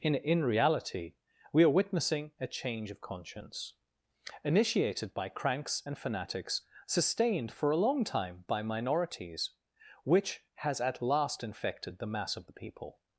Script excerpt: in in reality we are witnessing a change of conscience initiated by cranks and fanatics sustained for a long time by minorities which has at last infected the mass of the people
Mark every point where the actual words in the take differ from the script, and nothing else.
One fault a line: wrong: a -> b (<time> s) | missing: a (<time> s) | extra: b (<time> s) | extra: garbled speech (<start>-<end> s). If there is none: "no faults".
no faults